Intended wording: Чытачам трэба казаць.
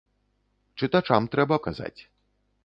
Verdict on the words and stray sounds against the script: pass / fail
pass